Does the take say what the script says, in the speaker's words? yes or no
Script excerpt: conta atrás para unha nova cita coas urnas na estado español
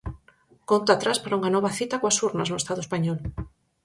no